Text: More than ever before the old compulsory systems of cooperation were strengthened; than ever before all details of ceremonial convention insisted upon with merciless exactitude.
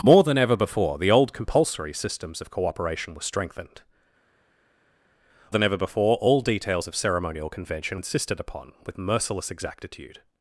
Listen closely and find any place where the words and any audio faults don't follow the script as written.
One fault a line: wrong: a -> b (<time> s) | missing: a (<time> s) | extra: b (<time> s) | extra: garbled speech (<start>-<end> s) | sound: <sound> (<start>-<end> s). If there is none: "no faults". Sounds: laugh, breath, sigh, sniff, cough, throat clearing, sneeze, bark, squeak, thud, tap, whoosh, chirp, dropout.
no faults